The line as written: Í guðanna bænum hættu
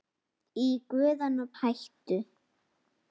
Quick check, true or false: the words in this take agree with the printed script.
false